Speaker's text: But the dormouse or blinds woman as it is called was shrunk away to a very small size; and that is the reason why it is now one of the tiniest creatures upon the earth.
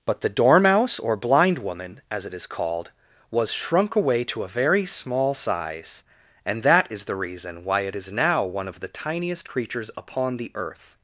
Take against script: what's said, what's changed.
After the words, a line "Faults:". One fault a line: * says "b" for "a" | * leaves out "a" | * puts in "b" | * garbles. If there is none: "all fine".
But the dormouse or blind woman as it is called was shrunk away to a very small size; and that is the reason why it is now one of the tiniest creatures upon the earth.
Faults:
* says "blind" for "blinds"